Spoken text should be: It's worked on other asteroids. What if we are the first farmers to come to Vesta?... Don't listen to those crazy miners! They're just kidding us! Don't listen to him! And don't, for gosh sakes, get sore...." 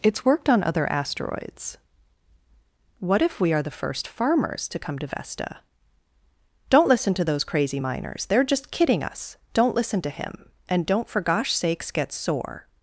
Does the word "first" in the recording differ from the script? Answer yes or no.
no